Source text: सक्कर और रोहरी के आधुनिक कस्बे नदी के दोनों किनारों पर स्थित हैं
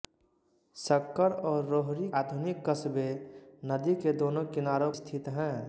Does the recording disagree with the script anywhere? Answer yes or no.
yes